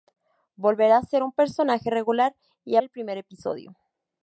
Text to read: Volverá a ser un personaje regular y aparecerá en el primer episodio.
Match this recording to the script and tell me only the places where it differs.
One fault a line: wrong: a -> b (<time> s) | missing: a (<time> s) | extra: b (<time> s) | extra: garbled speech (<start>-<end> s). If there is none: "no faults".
missing: aparecerá en (2.8 s)